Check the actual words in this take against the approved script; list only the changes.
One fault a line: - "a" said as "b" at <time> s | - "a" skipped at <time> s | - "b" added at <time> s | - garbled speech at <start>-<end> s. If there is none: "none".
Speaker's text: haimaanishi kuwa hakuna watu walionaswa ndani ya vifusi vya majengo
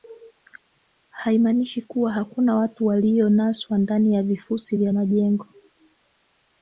none